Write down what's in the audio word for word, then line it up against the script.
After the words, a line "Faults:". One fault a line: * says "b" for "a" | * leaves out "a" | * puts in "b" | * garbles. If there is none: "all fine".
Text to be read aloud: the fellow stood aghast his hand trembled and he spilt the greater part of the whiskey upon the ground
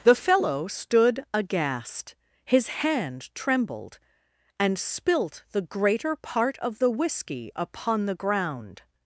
the fellow stood aghast his hand trembled and spilt the greater part of the whiskey upon the ground
Faults:
* leaves out "he"